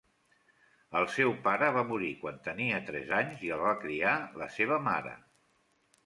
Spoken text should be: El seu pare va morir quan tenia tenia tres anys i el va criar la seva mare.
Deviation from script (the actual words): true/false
true